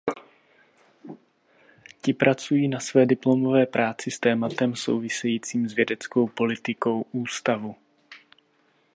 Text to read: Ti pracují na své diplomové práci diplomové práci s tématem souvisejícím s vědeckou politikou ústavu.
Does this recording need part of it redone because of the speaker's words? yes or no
yes